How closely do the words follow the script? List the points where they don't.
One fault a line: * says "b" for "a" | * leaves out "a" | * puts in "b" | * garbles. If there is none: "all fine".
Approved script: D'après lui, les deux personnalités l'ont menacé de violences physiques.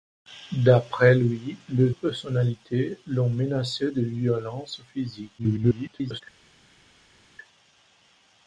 * leaves out "deux"
* garbles